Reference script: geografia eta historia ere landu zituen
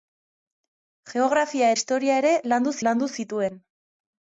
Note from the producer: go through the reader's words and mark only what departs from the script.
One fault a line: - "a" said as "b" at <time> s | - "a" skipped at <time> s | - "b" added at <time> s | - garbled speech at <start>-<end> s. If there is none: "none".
- "eta" skipped at 1.7 s
- "landu" added at 2.9 s